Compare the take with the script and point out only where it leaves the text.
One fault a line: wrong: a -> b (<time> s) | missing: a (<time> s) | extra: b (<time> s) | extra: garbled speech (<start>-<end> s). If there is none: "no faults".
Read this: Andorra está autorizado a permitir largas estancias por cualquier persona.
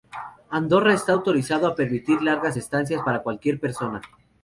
wrong: por -> para (3.0 s)